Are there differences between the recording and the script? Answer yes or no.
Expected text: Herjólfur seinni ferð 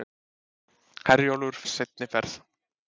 no